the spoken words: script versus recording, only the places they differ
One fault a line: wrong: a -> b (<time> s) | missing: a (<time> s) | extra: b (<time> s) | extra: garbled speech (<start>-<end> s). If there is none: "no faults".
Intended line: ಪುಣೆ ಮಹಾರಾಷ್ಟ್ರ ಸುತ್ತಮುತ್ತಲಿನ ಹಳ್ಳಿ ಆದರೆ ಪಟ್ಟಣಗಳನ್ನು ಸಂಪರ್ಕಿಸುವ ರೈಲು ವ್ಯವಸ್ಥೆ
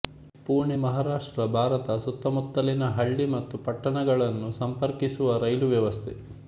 extra: ಭಾರತ (1.5 s)
wrong: ಆದರೆ -> ಮತ್ತು (3.3 s)